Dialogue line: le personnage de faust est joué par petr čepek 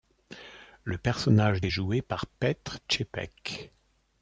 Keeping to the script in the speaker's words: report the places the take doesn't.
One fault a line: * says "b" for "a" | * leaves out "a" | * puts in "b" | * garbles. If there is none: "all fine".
* leaves out "de faust"